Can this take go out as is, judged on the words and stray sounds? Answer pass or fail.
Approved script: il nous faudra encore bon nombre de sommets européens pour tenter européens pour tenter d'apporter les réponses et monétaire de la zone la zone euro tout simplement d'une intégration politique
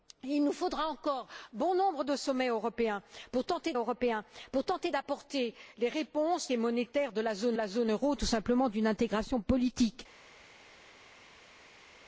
pass